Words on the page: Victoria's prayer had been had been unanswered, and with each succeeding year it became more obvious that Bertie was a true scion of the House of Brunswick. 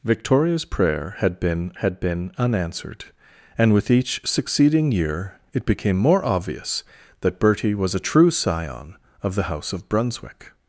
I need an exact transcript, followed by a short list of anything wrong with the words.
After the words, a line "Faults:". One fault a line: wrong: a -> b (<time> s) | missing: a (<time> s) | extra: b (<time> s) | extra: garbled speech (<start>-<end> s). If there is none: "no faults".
Victoria's prayer had been had been unanswered, and with each succeeding year it became more obvious that Bertie was a true scion of the House of Brunswick.
Faults:
no faults